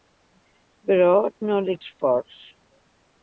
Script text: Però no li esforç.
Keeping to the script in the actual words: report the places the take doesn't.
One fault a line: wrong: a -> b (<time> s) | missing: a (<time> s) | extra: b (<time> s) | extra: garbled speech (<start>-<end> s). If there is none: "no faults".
no faults